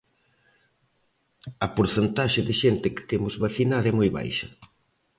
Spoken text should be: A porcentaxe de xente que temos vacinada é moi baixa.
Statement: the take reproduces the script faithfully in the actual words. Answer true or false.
true